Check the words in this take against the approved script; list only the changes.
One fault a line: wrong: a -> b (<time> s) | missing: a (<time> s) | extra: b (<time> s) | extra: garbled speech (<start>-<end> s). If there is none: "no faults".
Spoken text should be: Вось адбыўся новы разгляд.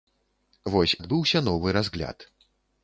no faults